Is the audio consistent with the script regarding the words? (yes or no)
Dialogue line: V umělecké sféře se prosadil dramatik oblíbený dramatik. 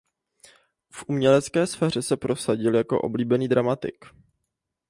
no